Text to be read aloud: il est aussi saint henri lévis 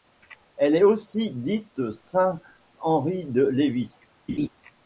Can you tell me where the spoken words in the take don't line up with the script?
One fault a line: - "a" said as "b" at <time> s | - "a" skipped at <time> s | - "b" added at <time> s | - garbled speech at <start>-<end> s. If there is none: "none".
- "il" said as "elle" at 0.6 s
- "dite" added at 1.3 s
- "de" added at 3.3 s